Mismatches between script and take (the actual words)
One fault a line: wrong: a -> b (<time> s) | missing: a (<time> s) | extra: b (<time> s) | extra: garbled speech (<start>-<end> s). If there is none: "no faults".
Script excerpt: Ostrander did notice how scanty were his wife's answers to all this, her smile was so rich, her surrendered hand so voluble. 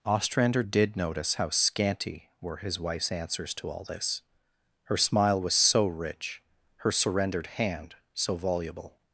no faults